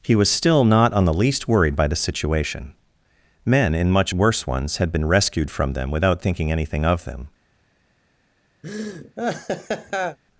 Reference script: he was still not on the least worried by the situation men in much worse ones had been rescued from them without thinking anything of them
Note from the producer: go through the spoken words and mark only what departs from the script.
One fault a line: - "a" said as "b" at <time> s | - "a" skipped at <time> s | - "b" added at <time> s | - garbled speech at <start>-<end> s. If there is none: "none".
none